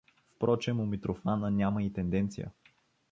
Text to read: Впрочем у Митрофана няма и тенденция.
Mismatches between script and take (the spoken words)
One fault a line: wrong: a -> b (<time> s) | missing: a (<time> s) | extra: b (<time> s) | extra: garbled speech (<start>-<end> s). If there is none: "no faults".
no faults